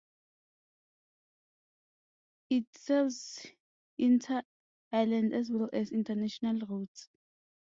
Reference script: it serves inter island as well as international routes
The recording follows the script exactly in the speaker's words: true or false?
true